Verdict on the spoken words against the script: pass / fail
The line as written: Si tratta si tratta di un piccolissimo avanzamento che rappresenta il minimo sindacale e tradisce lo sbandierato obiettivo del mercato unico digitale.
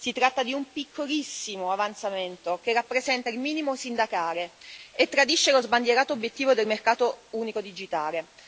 fail